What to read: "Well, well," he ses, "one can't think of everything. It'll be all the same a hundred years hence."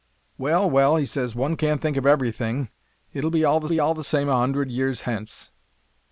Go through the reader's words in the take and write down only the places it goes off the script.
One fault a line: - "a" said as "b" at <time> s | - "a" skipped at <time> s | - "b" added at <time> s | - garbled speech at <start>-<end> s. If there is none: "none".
- "be all the" added at 3.7 s